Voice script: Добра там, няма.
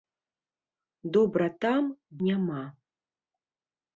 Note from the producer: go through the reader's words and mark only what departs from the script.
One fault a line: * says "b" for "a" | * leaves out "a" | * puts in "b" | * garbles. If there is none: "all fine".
all fine